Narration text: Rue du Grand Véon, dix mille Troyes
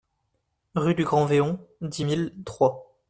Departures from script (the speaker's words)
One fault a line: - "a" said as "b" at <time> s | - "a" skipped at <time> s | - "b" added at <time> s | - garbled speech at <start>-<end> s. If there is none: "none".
none